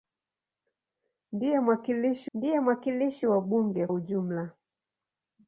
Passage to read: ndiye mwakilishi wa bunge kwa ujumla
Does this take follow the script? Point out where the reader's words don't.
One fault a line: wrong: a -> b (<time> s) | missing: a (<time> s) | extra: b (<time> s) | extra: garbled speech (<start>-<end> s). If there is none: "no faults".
extra: ndiye mwakilishi (2.3 s)
missing: kwa (3.9 s)